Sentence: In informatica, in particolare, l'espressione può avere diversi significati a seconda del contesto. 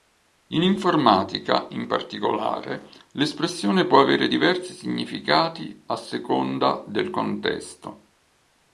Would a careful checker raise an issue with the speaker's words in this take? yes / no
no